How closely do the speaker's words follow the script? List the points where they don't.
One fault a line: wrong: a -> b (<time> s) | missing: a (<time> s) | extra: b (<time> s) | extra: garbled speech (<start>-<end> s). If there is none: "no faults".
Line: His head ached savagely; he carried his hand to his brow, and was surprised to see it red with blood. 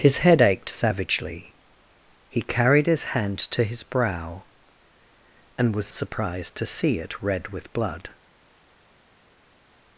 no faults